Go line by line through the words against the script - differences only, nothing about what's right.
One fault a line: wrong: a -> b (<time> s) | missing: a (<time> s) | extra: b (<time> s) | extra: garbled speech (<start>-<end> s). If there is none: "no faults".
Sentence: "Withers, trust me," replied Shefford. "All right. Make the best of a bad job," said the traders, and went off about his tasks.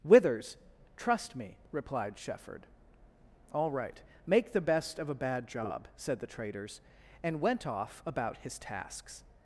no faults